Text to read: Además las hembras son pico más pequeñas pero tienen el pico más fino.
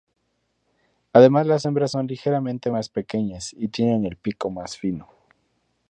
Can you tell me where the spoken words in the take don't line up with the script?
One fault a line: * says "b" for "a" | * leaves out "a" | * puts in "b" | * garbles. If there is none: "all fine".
* says "ligeramente" for "pico"
* says "y" for "pero"